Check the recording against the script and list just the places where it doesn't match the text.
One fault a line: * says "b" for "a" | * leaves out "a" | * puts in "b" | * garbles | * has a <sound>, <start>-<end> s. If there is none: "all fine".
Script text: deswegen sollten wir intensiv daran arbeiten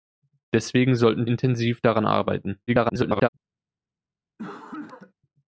* leaves out "wir"
* garbles
* has a cough, 4.4-5.1 s